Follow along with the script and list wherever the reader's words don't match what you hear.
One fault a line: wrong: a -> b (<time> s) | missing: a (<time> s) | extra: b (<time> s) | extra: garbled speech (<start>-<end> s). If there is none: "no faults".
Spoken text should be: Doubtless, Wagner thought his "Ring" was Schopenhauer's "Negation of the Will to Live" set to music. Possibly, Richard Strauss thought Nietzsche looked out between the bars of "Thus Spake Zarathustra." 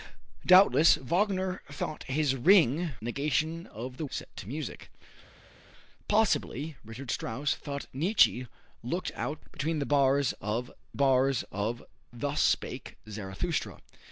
missing: was Schopenhauer's (2.9 s)
missing: Will to Live (4.0 s)
extra: bars of (10.9 s)